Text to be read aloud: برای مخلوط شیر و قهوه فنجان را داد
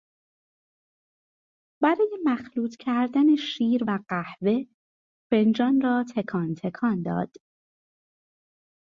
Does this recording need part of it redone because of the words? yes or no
yes